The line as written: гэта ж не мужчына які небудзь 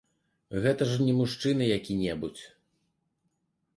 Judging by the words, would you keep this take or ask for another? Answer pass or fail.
pass